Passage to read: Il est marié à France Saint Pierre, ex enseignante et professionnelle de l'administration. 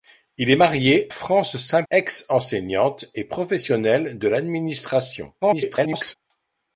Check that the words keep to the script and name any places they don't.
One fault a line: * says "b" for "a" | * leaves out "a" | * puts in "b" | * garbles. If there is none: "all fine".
* leaves out "à"
* leaves out "Pierre"
* garbles